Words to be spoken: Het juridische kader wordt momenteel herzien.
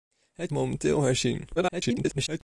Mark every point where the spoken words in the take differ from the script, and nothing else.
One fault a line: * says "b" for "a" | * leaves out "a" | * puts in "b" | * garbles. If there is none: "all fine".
* leaves out "juridische kader wordt"
* garbles